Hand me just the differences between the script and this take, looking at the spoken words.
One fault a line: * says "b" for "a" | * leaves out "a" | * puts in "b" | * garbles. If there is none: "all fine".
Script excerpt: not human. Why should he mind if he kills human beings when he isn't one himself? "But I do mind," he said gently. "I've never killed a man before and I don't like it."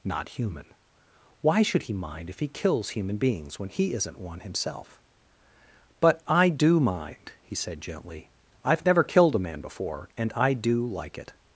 * says "do" for "don't"